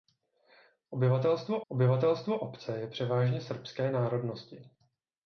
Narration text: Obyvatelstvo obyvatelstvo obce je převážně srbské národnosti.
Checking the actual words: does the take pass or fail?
pass